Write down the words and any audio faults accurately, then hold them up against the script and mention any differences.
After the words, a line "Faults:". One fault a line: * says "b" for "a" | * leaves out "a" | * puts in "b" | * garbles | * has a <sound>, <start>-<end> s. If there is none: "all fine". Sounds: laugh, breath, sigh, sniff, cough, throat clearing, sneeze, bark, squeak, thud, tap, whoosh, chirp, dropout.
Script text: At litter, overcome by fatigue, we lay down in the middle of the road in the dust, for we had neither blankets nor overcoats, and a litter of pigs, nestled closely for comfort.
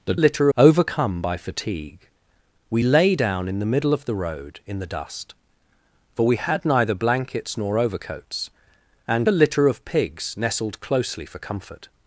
At litter, overcome by fatigue, we lay down in the middle of the road in the dust, for we had neither blankets nor overcoats, and a litter of pigs, nestled closely for comfort.
Faults:
all fine